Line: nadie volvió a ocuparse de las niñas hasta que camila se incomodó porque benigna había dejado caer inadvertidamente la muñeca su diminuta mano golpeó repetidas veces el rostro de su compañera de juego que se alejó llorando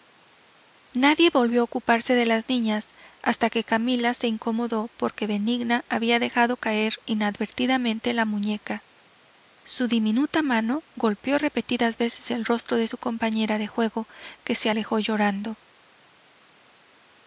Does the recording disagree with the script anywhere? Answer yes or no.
no